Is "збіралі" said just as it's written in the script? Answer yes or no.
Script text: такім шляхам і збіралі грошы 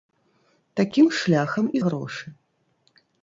no